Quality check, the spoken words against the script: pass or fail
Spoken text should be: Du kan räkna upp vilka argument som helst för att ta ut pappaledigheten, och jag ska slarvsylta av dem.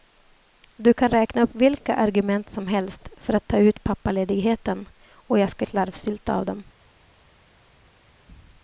pass